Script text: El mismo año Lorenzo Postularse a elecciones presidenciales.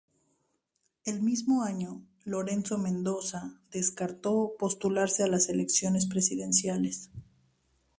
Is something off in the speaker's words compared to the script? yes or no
yes